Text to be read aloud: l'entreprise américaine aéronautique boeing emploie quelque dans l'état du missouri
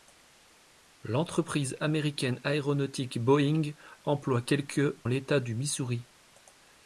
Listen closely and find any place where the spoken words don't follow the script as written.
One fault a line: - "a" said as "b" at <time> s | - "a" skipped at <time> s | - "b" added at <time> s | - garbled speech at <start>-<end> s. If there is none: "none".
- "dans" skipped at 5.0 s